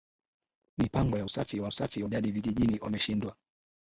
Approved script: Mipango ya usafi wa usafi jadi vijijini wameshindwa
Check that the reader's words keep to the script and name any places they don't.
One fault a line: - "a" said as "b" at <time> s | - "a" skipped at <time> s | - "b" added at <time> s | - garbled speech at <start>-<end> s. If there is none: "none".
none